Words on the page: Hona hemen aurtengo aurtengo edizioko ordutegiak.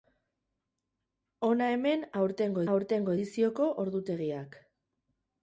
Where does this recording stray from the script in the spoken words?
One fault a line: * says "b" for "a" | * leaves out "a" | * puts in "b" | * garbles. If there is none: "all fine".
all fine